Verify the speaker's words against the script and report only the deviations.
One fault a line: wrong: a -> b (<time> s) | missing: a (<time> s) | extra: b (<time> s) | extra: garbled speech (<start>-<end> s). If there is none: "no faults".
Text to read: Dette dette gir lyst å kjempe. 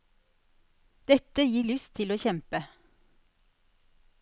missing: dette (1.4 s)
extra: til (2.0 s)